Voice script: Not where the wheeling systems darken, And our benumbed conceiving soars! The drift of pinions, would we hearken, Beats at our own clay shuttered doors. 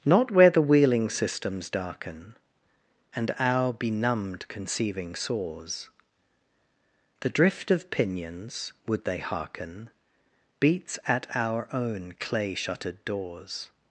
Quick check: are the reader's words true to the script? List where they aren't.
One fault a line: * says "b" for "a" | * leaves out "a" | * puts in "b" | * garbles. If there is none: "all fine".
* says "they" for "we"